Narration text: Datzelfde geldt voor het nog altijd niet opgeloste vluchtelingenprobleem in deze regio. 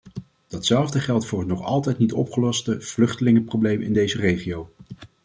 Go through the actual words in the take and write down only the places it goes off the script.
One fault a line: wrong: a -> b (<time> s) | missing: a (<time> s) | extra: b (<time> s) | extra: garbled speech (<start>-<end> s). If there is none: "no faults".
no faults